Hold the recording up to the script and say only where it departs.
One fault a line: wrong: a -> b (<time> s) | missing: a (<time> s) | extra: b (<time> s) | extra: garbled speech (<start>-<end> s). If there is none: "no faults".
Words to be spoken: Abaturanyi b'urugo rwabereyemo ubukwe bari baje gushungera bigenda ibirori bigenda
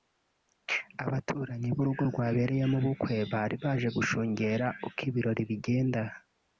wrong: bigenda -> uko (4.9 s)